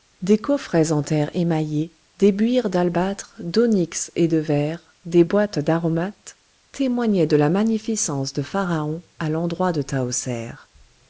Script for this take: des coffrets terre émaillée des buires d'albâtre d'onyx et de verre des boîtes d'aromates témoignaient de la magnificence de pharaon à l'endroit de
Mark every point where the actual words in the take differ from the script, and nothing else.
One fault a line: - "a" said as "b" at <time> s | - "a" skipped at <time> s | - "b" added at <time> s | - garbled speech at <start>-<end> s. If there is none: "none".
- "en" added at 0.9 s